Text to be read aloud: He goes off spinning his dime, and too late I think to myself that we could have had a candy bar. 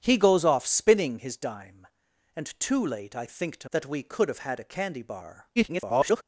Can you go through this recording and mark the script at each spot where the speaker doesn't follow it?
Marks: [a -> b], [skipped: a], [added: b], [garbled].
He goes off spinning his dime, and too late I think to [skipped: myself] that we could have had a candy bar. [garbled]